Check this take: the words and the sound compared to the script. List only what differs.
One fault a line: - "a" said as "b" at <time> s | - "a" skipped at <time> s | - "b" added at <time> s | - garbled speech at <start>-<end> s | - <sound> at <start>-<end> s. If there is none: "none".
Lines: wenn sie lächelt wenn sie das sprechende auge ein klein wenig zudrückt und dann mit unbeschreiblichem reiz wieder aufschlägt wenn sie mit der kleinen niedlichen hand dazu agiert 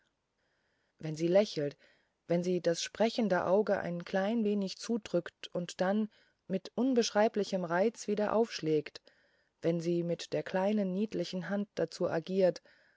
none